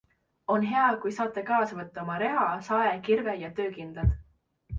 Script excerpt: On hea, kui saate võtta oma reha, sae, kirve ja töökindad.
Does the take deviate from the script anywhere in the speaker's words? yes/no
yes